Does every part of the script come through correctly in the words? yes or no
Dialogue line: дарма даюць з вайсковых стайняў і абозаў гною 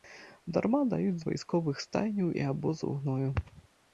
yes